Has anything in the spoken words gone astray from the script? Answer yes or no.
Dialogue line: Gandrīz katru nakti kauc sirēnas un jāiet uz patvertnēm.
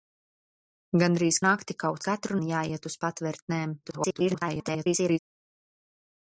yes